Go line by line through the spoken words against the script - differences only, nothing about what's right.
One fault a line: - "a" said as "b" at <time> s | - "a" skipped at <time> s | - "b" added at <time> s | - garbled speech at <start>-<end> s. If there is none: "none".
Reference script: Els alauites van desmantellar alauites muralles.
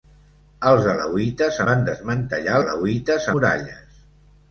none